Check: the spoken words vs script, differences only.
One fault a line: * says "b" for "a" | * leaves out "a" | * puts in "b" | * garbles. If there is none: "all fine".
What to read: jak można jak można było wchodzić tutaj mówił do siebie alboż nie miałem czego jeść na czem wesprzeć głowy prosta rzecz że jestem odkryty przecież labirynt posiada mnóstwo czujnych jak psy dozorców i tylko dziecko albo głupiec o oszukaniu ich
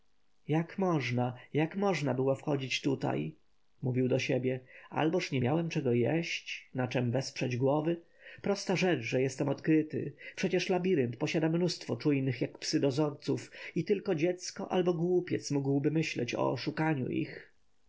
* puts in "mógłby myśleć"